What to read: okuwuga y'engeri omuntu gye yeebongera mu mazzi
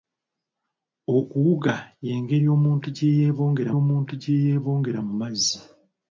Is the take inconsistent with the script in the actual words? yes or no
yes